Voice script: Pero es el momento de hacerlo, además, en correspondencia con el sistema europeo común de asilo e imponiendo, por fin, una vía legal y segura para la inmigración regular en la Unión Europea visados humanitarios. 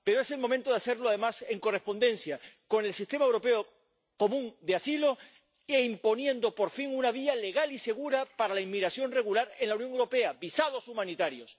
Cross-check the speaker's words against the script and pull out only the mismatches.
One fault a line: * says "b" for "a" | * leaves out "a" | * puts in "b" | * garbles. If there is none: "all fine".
all fine